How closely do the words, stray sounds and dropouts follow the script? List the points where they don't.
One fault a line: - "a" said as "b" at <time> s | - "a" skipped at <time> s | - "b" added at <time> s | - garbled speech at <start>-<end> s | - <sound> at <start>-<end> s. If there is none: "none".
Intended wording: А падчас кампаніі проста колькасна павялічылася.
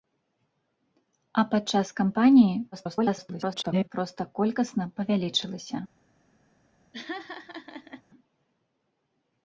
- garbled speech at 2.7-3.9 s
- laugh at 6.9-8.0 s